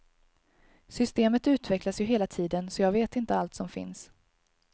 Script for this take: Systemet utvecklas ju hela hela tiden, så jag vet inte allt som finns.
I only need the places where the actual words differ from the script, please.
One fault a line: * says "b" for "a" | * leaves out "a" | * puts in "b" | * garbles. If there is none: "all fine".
* leaves out "hela"